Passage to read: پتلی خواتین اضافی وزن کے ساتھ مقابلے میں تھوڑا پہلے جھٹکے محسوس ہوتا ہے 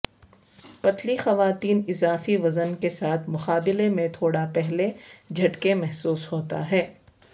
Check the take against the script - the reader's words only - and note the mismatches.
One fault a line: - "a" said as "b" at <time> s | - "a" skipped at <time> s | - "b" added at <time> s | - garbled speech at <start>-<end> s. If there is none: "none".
none